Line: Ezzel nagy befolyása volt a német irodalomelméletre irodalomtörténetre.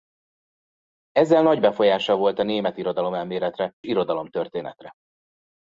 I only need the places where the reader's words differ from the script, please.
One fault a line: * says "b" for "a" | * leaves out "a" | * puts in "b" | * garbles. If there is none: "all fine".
all fine